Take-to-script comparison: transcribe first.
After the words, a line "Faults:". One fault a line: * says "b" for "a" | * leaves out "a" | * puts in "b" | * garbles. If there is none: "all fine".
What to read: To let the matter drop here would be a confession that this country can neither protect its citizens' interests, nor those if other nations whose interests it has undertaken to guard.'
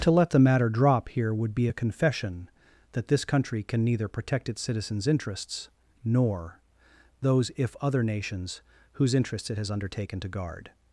To let the matter drop here would be a confession that this country can neither protect its citizens' interests, nor those if other nations whose interests it has undertaken to guard.'
Faults:
all fine